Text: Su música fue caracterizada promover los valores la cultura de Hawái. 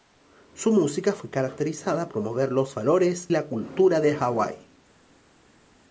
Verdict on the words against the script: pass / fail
pass